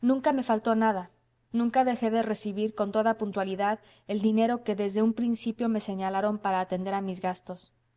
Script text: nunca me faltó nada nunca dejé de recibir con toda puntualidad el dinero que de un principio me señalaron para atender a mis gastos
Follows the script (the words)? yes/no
no